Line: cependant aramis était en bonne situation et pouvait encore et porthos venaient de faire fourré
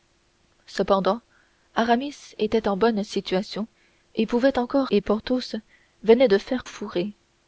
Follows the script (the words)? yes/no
yes